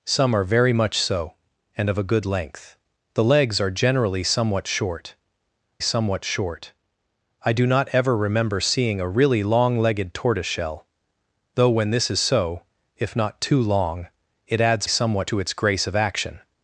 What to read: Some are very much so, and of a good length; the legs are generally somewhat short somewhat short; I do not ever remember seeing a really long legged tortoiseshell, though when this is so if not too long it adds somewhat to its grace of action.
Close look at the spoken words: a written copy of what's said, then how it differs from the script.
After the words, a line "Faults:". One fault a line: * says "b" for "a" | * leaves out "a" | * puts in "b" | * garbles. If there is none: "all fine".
Some are very much so, and of a good length; the legs are generally somewhat short somewhat short; I do not ever remember seeing a really long legged tortoiseshell, though when this is so if not too long it adds somewhat to its grace of action.
Faults:
all fine